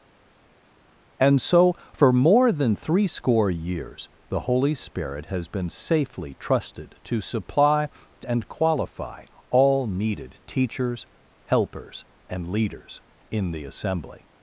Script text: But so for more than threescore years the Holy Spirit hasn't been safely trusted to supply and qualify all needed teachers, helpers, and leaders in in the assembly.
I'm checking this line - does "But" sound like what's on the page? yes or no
no